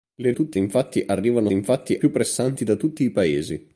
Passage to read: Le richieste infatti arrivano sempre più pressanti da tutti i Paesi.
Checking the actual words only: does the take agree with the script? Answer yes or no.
no